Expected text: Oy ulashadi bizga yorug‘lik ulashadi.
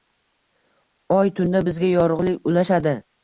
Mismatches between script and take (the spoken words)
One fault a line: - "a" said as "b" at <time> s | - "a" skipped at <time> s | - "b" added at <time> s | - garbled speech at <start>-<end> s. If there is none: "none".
- "ulashadi" said as "tunda" at 1.4 s